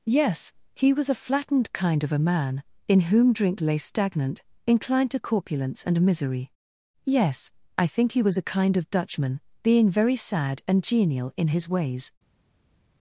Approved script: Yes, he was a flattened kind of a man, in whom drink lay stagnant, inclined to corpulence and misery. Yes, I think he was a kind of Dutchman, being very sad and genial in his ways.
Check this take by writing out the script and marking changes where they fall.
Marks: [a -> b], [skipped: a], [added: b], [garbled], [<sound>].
Yes, he was a flattened kind of a man, in whom drink lay stagnant, inclined to corpulence and misery. Yes, I think he was a kind of Dutchman, being very sad and genial in his ways.